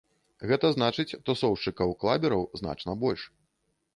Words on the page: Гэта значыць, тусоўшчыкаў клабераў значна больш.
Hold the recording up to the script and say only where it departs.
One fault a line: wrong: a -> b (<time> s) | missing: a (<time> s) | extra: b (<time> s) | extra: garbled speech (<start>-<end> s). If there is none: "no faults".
no faults